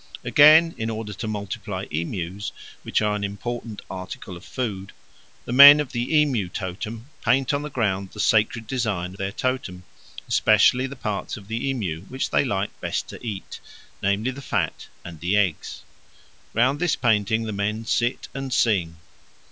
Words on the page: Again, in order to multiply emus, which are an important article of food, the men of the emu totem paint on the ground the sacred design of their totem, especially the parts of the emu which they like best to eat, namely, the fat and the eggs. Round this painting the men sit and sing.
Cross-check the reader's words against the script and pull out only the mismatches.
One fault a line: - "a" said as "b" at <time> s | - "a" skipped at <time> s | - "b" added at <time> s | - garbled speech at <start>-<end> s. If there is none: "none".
- "of" skipped at 9.1 s